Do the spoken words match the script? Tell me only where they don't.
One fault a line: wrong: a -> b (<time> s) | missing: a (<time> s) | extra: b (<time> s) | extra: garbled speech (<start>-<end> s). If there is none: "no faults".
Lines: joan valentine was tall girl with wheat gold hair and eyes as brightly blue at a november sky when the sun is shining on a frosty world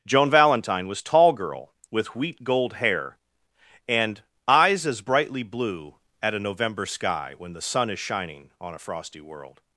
no faults